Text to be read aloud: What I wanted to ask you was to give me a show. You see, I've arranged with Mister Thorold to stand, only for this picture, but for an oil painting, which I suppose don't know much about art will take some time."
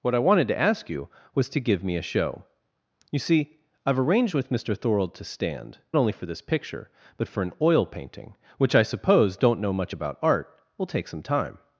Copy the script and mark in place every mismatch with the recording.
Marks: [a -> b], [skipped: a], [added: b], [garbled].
What I wanted to ask you was to give me a show. You see, I've arranged with Mister Thorold to stand, only for this picture, but for an oil painting, which I suppose don't know much about art will take some time."